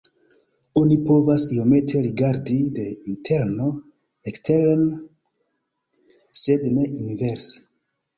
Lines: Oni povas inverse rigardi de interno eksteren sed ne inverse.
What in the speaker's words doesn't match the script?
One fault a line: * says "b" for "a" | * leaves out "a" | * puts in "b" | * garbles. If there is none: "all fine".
* says "iomete" for "inverse"